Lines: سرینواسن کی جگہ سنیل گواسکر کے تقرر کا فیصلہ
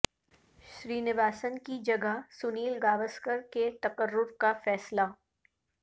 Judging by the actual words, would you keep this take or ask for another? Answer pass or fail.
pass